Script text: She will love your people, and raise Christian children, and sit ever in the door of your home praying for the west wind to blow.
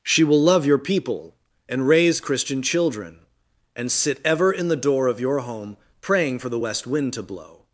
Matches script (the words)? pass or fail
pass